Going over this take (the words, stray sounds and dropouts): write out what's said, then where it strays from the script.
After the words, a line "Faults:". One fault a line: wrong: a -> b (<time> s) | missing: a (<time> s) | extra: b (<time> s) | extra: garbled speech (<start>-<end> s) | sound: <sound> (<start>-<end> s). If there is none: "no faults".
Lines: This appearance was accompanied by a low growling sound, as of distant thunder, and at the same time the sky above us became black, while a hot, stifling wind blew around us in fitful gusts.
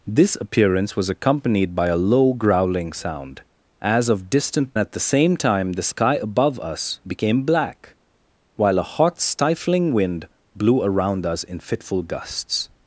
This appearance was accompanied by a low growling sound, as of distant at the same time the sky above us became black, while a hot, stifling wind blew around us in fitful gusts.
Faults:
missing: thunder and (4.8 s)